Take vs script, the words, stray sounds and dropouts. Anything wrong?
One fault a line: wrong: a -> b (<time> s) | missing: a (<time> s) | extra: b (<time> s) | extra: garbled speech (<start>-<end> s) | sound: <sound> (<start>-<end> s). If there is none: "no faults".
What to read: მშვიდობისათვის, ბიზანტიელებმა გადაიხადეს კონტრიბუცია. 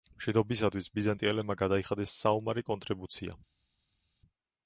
extra: საომარი (2.2 s)